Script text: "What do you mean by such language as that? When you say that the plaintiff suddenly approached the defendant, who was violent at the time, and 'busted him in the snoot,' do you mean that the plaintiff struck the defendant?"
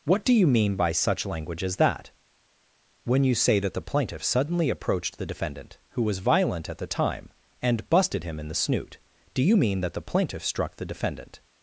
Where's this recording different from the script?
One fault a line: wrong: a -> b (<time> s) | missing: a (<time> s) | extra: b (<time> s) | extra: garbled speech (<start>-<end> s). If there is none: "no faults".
no faults